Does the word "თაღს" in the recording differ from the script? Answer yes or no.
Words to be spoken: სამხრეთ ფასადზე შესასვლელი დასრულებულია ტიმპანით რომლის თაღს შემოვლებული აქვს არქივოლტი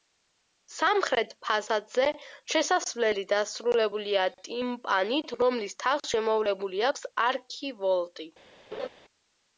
no